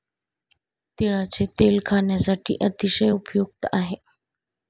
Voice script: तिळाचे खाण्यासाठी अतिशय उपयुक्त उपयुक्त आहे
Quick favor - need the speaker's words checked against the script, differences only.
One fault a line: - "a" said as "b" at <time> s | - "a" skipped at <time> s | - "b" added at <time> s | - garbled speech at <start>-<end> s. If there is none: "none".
- "तेल" added at 1.6 s
- "उपयुक्त" skipped at 3.7 s